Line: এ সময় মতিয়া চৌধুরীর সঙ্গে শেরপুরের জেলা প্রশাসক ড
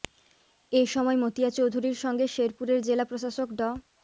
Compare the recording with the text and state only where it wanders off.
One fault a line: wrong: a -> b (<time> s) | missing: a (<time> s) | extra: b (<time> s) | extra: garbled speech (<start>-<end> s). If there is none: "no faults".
no faults